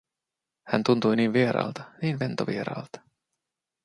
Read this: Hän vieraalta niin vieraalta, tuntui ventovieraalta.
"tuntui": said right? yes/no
no